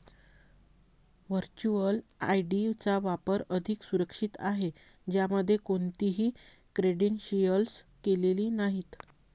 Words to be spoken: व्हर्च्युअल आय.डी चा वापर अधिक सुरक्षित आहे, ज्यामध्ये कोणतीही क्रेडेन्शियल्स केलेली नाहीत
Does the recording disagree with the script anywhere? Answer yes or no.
no